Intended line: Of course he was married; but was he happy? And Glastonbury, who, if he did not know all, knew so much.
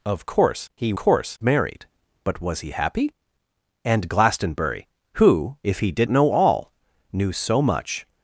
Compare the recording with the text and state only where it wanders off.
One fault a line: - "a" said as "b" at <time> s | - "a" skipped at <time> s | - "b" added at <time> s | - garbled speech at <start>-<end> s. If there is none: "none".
- "was" said as "course" at 0.9 s
- "not" skipped at 6.1 s